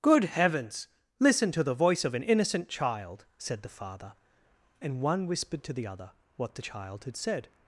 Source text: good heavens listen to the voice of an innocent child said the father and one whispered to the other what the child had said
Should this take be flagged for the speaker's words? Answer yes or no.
no